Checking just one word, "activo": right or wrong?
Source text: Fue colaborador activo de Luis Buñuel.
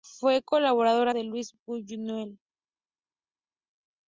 wrong